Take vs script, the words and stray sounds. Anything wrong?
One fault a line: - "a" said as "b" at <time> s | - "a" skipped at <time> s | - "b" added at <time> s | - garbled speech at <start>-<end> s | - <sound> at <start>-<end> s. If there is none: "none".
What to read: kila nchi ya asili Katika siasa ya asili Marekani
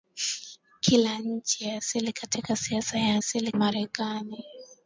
none